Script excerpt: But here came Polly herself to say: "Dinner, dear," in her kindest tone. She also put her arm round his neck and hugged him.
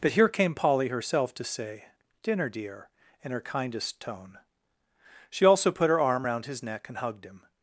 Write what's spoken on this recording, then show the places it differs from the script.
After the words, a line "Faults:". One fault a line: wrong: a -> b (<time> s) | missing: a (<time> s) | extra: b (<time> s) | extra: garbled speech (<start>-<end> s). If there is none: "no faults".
But here came Polly herself to say: "Dinner, dear," in her kindest tone. She also put her arm round his neck and hugged him.
Faults:
no faults